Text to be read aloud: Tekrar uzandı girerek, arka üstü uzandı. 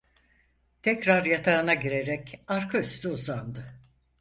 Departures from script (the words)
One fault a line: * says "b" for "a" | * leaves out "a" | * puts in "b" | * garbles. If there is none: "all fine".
* says "yatağına" for "uzandı"